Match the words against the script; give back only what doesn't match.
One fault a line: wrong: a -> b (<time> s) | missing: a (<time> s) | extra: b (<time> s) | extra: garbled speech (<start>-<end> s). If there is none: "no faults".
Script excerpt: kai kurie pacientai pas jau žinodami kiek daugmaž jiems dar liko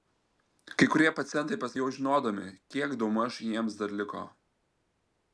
no faults